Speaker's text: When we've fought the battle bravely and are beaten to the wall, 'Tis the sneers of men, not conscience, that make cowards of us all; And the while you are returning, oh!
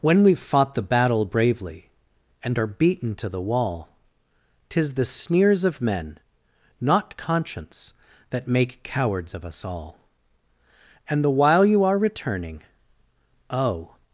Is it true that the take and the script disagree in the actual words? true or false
false